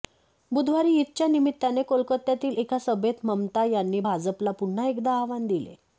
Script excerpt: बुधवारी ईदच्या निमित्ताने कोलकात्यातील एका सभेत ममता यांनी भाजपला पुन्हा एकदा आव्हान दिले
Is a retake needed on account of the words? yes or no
no